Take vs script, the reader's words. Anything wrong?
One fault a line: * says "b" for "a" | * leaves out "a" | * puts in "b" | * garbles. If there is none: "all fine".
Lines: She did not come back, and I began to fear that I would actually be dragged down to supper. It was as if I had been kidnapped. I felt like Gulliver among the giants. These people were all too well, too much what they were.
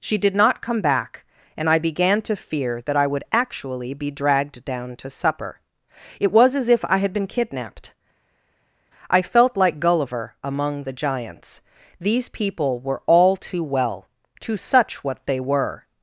* says "such" for "much"